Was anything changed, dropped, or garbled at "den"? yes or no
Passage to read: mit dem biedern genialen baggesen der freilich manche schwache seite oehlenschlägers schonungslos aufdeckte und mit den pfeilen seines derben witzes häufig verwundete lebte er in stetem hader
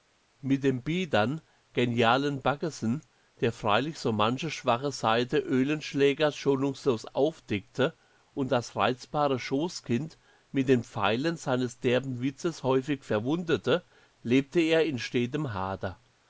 no